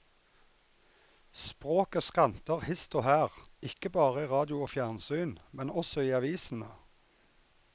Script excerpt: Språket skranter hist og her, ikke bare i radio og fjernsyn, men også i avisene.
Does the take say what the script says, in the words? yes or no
yes